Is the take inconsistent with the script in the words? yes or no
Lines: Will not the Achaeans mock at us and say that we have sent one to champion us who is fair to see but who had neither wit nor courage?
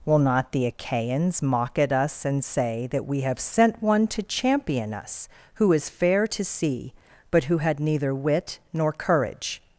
no